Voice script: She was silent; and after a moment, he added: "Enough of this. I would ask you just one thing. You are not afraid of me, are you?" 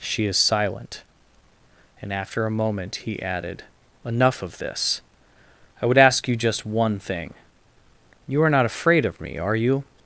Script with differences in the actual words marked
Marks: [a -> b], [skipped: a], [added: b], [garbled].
She [was -> is] silent; and after a moment, he added: "Enough of this. I would ask you just one thing. You are not afraid of me, are you?"